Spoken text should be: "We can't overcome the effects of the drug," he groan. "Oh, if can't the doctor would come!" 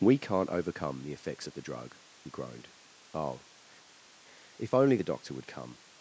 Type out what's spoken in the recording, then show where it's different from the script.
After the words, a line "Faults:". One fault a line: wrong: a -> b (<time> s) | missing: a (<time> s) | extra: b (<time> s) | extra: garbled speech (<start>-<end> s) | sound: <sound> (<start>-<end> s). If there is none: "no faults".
"We can't overcome the effects of the drug," he groaned. "Oh, if only the doctor would come!"
Faults:
wrong: groan -> groaned (2.3 s)
wrong: can't -> only (4.7 s)